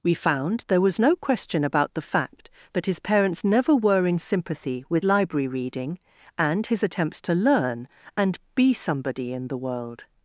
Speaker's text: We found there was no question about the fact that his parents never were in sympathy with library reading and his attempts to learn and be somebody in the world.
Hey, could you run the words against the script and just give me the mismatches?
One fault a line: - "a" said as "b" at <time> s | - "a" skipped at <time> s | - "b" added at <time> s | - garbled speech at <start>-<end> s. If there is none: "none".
none